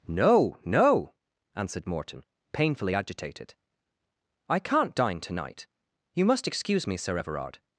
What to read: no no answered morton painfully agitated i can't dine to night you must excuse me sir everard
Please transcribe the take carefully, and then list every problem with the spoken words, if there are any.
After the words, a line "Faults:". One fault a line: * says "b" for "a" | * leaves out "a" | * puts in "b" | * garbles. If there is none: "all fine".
no no answered morton painfully agitated i can't dine to night you must excuse me sir everard
Faults:
all fine